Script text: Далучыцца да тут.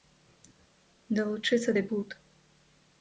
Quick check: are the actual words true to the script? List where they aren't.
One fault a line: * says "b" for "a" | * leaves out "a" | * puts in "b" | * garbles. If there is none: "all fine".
all fine